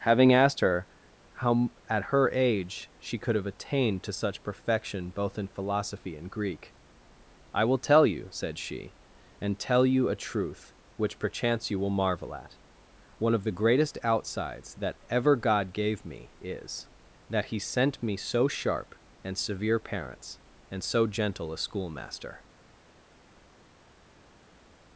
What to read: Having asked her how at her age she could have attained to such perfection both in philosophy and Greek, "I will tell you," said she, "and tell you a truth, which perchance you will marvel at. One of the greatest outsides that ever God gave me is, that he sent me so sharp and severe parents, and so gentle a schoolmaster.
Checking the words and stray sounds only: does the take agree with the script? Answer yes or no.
yes